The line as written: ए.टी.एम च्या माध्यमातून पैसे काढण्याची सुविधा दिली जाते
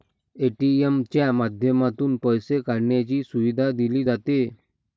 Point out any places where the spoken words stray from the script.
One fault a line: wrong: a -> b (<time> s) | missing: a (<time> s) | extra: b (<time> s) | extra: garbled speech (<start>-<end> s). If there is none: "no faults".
no faults